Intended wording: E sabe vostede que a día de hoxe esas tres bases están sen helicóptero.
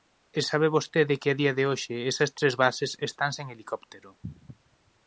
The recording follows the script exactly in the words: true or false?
true